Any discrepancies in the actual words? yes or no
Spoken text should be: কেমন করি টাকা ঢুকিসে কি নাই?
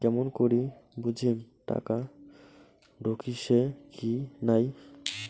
yes